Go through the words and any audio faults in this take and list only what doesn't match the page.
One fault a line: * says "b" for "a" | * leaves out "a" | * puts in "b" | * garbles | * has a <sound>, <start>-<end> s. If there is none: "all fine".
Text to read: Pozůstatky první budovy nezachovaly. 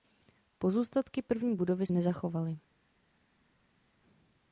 all fine